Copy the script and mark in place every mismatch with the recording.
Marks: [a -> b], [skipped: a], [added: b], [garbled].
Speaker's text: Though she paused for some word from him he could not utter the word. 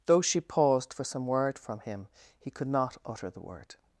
Though she paused for some word from him he could not utter the word.